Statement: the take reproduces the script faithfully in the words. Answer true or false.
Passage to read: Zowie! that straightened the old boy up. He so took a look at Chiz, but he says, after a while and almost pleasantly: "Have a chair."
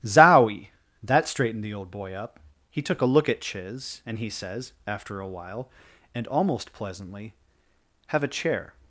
false